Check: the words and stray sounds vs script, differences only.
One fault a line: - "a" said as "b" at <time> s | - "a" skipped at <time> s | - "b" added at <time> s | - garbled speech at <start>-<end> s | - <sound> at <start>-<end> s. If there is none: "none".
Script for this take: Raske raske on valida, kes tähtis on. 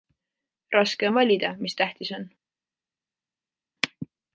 - "raske" skipped at 1.1 s
- "kes" said as "mis" at 1.6 s